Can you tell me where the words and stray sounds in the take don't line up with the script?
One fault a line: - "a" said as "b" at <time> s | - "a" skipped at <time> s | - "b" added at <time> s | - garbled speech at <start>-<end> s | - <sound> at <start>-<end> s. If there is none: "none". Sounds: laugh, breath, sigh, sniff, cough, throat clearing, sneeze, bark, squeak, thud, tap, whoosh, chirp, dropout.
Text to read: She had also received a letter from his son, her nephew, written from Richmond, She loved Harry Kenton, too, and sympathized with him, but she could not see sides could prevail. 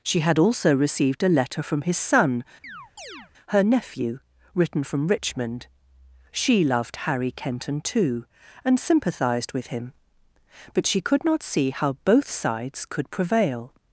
- chirp at 2.6-3.3 s
- "how both" added at 11.7 s